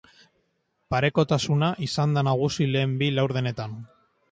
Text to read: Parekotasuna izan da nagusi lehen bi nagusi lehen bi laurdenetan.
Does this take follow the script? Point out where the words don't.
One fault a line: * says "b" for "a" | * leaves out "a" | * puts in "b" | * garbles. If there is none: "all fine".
* leaves out "nagusi lehen bi"